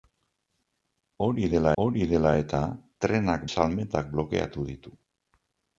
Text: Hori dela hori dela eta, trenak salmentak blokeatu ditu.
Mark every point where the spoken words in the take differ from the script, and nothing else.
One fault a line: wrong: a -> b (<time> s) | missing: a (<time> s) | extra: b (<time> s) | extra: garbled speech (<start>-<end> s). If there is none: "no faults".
no faults